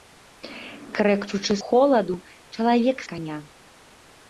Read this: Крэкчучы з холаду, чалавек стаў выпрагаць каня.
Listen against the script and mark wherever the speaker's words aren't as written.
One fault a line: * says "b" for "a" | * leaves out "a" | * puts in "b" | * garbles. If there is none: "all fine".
* leaves out "з"
* leaves out "стаў выпрагаць"